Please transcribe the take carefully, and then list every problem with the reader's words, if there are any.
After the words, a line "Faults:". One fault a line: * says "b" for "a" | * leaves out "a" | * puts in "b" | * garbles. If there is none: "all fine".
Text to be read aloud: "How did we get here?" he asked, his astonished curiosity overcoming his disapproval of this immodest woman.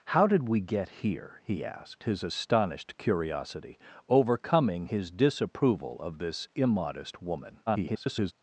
"How did we get here?" he asked, his astonished curiosity overcoming his disapproval of this immodest woman. [garbled]
Faults:
* garbles